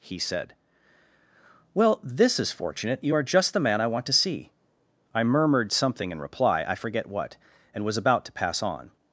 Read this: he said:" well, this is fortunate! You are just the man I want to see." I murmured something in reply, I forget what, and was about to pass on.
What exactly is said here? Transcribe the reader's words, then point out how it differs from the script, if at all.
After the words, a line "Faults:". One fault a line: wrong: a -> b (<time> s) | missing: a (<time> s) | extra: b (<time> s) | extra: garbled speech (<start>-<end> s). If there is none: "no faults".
he said:" well, this is fortunate! You are just the man I want to see." I murmured something in reply, I forget what, and was about to pass on.
Faults:
no faults